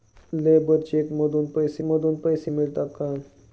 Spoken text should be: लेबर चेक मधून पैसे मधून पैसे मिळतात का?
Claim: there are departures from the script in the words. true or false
false